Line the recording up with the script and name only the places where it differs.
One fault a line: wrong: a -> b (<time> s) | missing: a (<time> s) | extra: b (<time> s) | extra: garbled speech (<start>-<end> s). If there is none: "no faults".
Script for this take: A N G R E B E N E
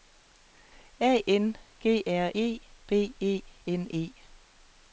no faults